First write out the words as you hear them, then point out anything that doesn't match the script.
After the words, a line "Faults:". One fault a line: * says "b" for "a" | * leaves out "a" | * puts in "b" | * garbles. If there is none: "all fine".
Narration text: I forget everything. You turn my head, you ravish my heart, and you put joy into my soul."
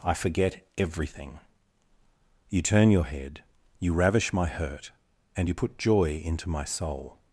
I forget everything. You turn your head, you ravish my hurt, and you put joy into my soul."
Faults:
* says "your" for "my"
* says "hurt" for "heart"